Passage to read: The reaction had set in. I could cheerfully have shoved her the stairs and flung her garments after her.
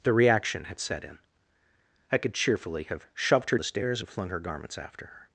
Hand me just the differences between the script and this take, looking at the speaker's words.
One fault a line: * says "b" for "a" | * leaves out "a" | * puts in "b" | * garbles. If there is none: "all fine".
all fine